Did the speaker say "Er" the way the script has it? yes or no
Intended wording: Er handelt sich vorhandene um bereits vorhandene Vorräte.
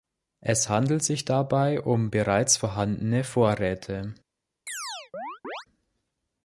no